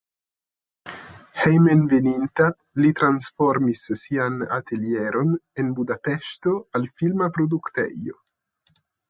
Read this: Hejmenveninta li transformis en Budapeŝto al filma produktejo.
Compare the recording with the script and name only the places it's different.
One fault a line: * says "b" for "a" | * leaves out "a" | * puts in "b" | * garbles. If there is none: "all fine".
* puts in "sian atelieron"